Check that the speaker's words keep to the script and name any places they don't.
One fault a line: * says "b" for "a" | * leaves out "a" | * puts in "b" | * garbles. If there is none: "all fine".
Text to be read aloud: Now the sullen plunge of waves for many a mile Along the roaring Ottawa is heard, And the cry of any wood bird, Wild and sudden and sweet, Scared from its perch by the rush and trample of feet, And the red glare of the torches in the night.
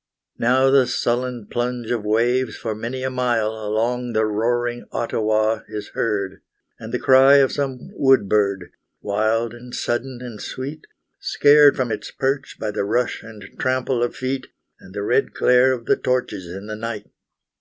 * says "some" for "any"